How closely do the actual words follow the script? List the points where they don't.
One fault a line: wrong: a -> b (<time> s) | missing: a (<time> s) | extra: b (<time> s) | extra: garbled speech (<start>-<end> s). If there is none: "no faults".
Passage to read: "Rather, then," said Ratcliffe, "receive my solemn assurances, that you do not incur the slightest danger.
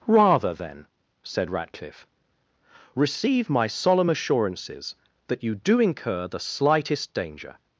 missing: not (5.8 s)